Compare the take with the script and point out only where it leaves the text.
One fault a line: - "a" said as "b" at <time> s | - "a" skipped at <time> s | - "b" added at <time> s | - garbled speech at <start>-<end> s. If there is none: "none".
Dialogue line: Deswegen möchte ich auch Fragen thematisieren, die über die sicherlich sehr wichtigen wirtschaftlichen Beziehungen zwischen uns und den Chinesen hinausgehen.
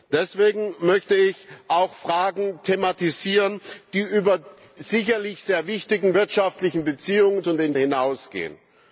- "die" skipped at 4.4 s
- "zwischen uns" skipped at 7.4 s
- "Chinesen" skipped at 7.7 s